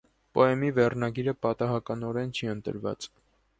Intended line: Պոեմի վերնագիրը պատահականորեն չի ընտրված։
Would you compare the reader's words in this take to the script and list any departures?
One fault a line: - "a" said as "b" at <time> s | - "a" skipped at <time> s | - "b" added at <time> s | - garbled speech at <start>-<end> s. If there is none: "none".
none